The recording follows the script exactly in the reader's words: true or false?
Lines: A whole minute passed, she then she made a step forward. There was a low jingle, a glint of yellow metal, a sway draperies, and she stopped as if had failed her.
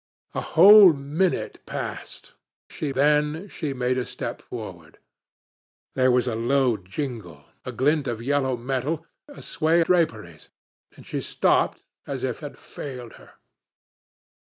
true